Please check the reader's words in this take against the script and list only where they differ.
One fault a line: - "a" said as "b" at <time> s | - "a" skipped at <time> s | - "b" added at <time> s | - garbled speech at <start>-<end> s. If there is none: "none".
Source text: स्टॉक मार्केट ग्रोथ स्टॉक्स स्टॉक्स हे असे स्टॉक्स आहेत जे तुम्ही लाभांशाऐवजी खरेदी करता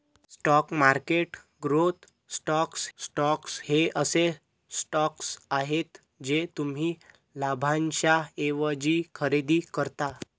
none